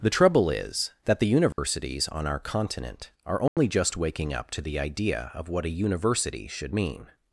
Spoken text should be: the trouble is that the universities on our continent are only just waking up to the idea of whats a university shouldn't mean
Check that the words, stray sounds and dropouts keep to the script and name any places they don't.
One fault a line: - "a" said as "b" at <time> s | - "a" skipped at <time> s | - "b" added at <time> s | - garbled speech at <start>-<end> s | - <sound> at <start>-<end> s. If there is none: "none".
- dropout at 1.5-1.6 s
- dropout at 3.5-3.6 s
- "whats" said as "what" at 5.5 s
- "shouldn't" said as "should" at 6.5 s